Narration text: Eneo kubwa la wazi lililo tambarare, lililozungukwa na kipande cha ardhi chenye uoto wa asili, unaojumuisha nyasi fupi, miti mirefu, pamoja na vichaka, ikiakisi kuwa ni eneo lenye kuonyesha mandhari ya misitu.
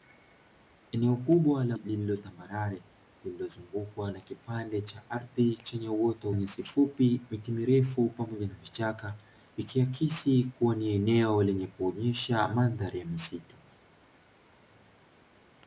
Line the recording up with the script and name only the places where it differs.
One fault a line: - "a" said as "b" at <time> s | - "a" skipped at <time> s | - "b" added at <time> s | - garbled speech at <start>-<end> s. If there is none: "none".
- "wazi" skipped at 1.8 s
- "wa asili unaojumuisha" skipped at 6.3 s